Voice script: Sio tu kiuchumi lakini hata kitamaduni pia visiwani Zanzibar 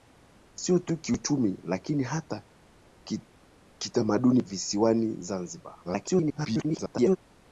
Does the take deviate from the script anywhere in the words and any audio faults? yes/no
yes